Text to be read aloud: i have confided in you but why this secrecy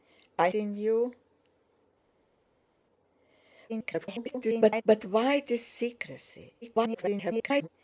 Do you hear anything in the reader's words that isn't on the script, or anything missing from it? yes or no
yes